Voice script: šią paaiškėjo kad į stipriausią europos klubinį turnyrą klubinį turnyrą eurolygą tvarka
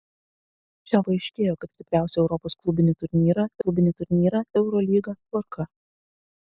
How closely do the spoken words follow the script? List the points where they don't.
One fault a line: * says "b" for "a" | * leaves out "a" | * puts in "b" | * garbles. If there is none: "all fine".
all fine